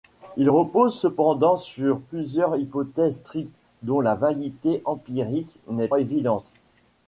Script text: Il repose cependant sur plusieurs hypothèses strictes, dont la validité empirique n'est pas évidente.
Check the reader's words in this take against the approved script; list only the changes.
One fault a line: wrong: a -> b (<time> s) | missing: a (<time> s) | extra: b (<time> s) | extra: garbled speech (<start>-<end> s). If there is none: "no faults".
missing: pas (5.9 s)